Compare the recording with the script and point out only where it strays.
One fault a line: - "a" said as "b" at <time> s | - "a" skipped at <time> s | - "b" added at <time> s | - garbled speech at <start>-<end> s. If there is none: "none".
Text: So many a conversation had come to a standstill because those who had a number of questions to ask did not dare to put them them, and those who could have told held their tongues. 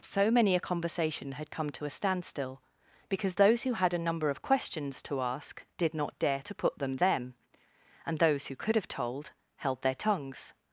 none